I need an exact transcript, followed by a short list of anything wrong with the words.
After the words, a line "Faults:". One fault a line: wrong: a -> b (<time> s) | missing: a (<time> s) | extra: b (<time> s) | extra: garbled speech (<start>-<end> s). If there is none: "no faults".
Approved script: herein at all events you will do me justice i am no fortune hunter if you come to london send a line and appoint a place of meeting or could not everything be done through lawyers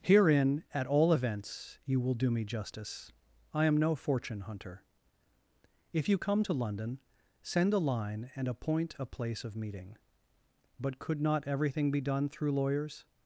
herein at all events you will do me justice i am no fortune hunter if you come to london send a line and appoint a place of meeting but could not everything be done through lawyers
Faults:
wrong: or -> but (10.8 s)